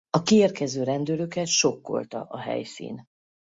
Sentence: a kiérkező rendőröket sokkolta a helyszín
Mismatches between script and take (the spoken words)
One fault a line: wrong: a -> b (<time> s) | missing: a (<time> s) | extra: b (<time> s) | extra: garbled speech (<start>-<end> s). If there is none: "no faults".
no faults